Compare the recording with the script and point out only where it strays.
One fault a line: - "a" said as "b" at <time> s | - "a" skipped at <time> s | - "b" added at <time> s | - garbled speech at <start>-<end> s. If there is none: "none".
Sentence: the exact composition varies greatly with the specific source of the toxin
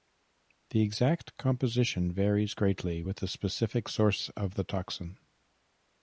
none